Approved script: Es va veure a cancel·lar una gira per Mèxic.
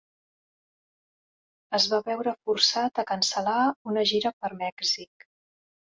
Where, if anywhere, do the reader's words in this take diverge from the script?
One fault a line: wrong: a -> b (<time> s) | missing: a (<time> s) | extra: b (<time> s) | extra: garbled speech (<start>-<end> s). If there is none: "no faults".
extra: forçat (2.5 s)